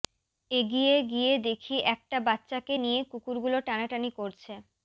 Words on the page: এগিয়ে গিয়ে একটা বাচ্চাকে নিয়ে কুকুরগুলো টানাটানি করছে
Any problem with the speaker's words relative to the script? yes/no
yes